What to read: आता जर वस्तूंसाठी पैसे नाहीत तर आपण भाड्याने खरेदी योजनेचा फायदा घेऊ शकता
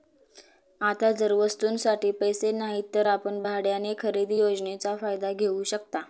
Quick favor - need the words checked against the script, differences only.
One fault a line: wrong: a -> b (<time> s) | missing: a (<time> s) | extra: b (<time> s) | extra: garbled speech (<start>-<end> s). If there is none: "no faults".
no faults